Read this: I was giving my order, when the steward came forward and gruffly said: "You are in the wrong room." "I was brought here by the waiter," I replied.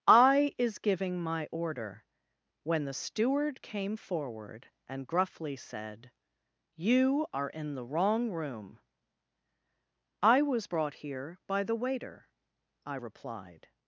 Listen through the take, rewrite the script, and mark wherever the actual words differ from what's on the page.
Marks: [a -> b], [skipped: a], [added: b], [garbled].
I [was -> is] giving my order, when the steward came forward and gruffly said: "You are in the wrong room." "I was brought here by the waiter," I replied.